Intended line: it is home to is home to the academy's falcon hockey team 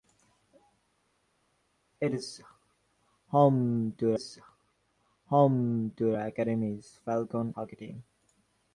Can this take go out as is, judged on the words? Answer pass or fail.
pass